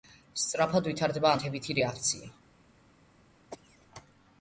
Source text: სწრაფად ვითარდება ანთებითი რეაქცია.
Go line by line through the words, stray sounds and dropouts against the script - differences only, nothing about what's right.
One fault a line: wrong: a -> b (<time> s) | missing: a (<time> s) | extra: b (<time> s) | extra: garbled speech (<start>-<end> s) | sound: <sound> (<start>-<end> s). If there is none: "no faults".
sound: cough (3.5-3.9 s)